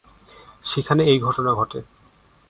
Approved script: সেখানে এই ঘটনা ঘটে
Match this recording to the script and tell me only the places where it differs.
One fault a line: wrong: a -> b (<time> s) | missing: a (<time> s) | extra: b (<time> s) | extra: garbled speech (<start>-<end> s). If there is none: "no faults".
no faults